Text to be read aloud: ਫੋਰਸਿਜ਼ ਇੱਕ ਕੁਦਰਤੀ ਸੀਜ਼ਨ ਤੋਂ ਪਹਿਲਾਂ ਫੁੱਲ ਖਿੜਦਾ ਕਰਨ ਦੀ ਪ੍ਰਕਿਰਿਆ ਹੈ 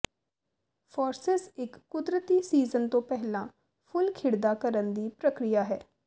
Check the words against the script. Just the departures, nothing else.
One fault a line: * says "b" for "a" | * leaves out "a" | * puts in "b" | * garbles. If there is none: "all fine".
all fine